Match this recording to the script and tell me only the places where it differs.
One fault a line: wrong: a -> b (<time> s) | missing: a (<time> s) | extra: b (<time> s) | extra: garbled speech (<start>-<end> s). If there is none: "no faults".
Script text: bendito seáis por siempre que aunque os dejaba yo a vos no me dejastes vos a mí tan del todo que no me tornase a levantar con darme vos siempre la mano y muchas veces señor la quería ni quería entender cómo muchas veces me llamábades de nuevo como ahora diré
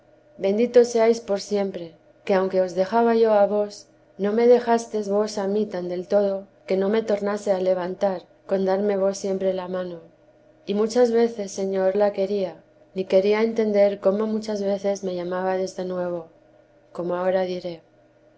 no faults